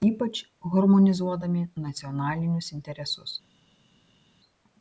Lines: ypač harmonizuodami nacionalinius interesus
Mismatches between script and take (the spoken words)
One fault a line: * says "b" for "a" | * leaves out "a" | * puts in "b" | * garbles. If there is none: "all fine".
all fine